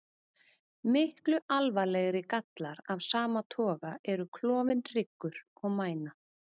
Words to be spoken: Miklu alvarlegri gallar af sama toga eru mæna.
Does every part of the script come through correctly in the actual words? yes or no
no